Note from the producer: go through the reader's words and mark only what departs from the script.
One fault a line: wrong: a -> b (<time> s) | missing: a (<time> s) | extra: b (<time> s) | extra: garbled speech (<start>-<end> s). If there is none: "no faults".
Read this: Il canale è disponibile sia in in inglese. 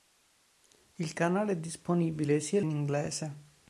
no faults